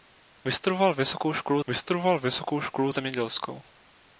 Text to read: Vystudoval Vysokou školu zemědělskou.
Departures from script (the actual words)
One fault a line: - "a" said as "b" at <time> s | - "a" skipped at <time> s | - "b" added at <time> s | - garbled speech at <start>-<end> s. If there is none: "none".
- "vystudoval Vysokou školu" added at 1.7 s